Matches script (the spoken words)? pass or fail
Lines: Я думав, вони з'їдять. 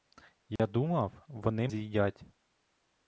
pass